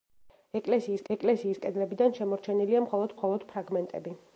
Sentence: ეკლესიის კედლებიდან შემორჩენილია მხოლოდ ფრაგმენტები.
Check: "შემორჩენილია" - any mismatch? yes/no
no